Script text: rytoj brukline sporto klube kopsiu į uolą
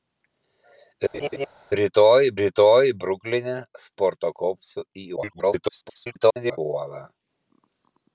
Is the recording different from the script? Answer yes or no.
yes